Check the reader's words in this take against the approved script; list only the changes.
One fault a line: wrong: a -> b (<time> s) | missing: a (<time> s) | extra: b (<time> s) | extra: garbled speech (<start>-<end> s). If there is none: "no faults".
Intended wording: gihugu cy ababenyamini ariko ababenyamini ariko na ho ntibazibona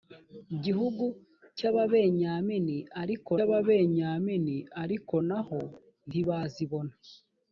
no faults